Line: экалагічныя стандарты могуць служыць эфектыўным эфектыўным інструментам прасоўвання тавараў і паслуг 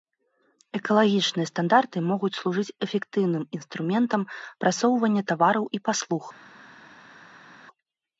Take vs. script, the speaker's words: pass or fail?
fail